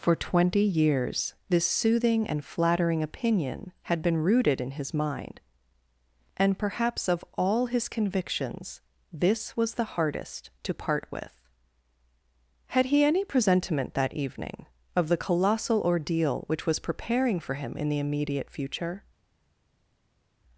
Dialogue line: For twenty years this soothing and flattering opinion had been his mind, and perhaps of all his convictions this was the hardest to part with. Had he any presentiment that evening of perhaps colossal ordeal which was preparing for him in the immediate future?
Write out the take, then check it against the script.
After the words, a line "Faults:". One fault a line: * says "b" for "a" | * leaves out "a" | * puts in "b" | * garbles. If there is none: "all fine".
For twenty years this soothing and flattering opinion had been rooted in his mind, and perhaps of all his convictions this was the hardest to part with. Had he any presentiment that evening of the colossal ordeal which was preparing for him in the immediate future?
Faults:
* puts in "rooted in"
* says "the" for "perhaps"